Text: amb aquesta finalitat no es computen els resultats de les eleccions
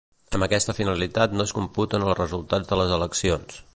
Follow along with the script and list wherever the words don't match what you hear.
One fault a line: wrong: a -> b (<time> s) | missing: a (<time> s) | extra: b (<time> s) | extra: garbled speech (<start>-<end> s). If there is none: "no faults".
no faults